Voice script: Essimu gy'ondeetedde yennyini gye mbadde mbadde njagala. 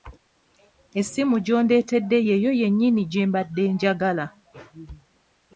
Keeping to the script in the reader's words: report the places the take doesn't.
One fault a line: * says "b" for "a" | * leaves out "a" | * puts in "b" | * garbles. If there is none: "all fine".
* puts in "yeyo"
* leaves out "mbadde"